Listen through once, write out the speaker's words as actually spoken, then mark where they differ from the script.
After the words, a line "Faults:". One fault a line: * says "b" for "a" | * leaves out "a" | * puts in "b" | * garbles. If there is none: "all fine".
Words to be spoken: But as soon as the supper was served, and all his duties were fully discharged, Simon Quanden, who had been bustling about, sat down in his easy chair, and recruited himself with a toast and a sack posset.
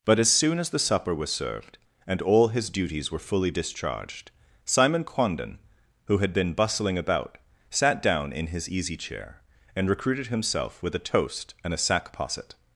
But as soon as the supper was served, and all his duties were fully discharged, Simon Quanden, who had been bustling about, sat down in his easy chair, and recruited himself with a toast and a sack posset.
Faults:
all fine